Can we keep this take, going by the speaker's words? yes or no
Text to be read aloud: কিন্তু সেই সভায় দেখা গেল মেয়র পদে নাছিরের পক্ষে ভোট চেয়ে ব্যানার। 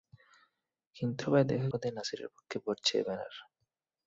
no